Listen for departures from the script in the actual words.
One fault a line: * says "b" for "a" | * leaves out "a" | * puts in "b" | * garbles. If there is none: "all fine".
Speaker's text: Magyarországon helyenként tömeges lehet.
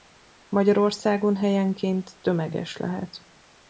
all fine